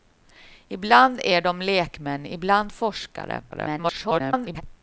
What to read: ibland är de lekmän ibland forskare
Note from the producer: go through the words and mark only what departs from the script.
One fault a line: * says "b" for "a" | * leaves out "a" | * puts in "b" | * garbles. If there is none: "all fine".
* garbles